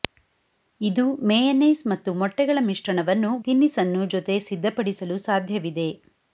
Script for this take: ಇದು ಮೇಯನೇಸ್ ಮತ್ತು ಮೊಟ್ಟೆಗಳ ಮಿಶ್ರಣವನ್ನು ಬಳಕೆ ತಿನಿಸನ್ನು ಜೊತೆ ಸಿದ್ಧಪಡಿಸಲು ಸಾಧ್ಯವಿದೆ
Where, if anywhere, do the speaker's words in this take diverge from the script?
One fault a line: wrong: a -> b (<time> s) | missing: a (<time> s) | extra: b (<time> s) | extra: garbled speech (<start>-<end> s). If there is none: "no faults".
missing: ಬಳಕೆ (3.3 s)